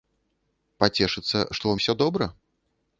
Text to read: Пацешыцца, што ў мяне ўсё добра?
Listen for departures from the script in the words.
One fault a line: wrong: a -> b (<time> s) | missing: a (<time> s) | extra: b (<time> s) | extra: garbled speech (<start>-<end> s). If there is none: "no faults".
missing: мяне (1.7 s)